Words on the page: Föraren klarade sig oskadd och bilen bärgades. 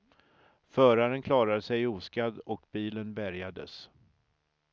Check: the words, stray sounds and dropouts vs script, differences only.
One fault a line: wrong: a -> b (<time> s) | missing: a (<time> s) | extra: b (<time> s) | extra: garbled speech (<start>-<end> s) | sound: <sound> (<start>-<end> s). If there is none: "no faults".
no faults